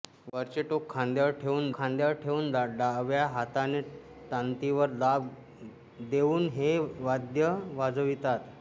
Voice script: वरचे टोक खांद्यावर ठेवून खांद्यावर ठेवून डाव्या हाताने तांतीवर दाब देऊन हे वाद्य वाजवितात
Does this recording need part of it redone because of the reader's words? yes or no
no